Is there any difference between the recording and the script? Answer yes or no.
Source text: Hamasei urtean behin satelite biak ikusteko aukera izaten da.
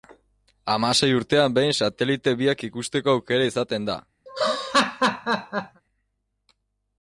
no